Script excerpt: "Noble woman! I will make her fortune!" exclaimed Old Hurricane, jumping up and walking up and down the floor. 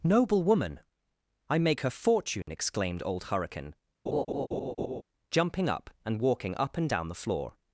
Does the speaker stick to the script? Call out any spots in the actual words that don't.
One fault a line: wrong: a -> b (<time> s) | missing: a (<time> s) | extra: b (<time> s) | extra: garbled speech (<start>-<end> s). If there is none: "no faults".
missing: will (1.6 s)